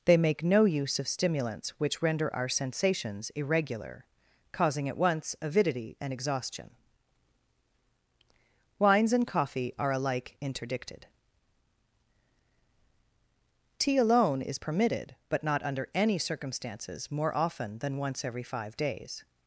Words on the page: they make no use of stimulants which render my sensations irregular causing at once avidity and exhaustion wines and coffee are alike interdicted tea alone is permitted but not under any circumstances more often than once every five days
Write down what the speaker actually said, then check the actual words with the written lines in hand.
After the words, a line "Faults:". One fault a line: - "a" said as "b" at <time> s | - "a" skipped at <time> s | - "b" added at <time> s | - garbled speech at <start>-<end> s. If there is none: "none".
they make no use of stimulants which render our sensations irregular causing at once avidity and exhaustion wines and coffee are alike interdicted tea alone is permitted but not under any circumstances more often than once every five days
Faults:
- "my" said as "our" at 2.4 s